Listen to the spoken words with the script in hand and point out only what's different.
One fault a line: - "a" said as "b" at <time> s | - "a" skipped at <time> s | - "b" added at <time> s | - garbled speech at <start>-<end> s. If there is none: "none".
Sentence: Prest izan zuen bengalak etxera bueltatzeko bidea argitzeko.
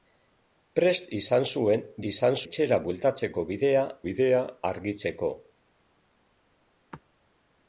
- "bengalak" said as "izan" at 2.1 s
- "bidea" added at 4.1 s